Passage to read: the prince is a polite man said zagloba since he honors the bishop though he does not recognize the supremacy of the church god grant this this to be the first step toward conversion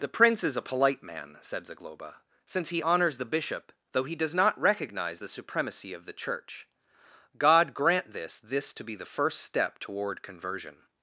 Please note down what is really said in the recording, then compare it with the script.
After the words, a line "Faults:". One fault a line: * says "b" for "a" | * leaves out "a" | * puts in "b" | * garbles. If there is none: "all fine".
the prince is a polite man said zagloba since he honors the bishop though he does not recognize the supremacy of the church god grant this this to be the first step toward conversion
Faults:
all fine